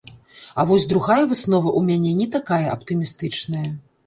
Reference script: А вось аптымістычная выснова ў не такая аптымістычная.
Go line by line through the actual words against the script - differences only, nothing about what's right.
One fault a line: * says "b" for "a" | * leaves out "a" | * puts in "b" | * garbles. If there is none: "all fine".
* says "другая" for "аптымістычная"
* puts in "мяне"